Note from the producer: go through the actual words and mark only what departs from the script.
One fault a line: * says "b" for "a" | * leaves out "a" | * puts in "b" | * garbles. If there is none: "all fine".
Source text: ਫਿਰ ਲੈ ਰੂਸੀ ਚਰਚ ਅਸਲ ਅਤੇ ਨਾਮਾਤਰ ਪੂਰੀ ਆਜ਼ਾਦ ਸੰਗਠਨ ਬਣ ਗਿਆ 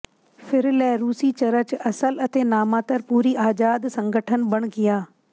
all fine